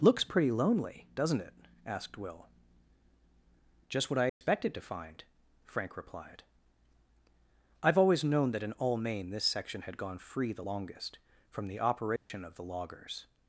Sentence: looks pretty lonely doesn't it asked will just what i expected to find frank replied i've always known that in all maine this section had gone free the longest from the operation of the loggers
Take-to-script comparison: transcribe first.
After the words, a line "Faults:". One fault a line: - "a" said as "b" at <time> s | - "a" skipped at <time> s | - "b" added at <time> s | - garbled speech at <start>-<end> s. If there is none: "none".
looks pretty lonely doesn't it asked will just what i expected to find frank replied i've always known that in all maine this section had gone free the longest from the operation of the loggers
Faults:
none